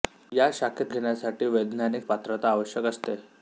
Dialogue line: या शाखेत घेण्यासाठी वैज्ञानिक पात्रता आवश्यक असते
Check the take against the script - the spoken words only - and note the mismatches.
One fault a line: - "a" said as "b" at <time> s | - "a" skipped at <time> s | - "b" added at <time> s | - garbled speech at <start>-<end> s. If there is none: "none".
none